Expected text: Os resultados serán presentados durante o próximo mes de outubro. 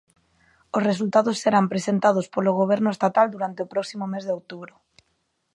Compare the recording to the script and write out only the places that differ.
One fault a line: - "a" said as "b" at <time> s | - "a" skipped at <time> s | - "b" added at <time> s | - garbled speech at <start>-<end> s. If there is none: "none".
- "polo Goberno estatal" added at 2.3 s